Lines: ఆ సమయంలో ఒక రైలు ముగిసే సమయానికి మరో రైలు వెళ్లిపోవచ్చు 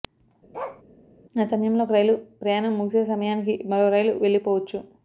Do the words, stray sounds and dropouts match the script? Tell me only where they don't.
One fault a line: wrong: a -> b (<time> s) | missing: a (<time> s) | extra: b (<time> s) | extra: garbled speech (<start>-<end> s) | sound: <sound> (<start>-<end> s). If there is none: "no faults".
sound: bark (0.5-0.8 s)
extra: ప్రయాణం (2.4 s)